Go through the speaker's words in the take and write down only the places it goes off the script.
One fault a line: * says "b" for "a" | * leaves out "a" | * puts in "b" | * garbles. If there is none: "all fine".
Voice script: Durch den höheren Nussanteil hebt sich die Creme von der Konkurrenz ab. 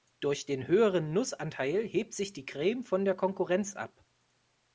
all fine